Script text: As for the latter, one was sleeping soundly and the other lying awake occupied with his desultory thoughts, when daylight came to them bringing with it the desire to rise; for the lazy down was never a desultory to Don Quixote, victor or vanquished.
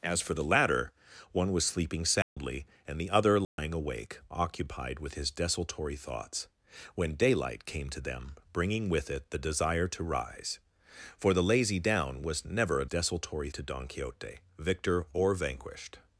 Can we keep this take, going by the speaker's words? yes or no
yes